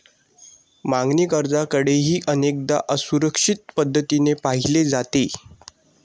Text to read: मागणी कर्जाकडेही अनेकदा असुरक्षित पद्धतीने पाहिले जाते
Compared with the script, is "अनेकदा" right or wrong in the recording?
right